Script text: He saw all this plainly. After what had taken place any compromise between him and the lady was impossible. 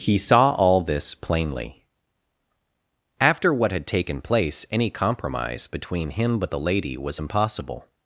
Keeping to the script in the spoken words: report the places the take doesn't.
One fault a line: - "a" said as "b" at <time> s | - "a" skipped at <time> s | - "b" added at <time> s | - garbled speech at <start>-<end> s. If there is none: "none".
- "and" said as "but" at 6.4 s